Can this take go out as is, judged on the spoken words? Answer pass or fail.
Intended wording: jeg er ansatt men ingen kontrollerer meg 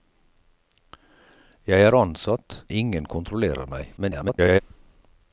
fail